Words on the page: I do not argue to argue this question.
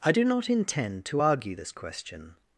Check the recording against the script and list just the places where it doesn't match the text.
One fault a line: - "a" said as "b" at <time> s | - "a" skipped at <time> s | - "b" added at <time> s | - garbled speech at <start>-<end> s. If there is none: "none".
- "argue" said as "intend" at 0.5 s